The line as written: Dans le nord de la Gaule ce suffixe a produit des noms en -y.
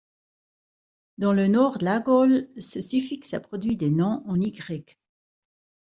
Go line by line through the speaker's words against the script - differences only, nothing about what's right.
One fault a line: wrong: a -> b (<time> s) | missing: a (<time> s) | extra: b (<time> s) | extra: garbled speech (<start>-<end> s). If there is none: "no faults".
no faults